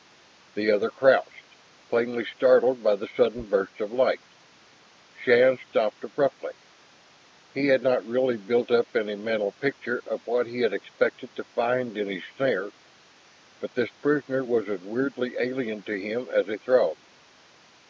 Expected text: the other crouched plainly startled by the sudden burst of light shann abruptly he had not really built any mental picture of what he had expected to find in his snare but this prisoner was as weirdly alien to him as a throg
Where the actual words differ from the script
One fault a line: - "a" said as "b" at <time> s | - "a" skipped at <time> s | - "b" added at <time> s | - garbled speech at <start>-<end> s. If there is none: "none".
- "stopped" added at 5.7 s
- "up" added at 8.7 s